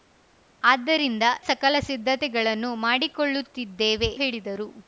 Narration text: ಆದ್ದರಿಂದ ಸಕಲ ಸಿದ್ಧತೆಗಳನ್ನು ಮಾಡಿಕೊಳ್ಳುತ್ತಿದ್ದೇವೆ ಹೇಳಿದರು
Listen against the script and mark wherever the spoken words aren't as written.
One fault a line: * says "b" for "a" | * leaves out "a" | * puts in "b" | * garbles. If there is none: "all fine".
all fine